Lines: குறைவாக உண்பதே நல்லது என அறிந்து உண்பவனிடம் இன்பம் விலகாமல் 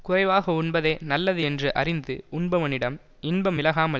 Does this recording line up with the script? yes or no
no